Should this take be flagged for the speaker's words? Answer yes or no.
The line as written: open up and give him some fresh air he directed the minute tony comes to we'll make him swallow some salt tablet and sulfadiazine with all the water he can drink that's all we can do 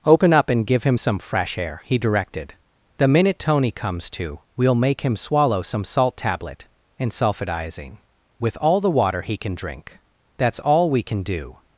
no